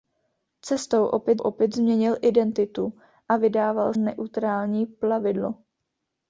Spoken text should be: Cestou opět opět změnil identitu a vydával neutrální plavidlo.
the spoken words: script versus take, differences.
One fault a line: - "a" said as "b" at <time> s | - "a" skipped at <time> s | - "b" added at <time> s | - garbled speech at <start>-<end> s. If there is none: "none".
none